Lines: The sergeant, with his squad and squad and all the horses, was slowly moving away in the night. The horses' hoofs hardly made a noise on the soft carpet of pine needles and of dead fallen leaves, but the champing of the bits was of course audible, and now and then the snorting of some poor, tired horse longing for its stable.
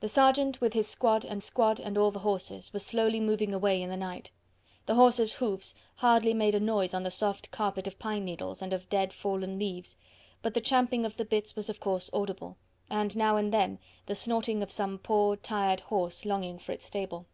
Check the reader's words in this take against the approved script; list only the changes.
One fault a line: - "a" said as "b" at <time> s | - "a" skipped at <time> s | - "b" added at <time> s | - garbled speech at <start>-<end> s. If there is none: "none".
none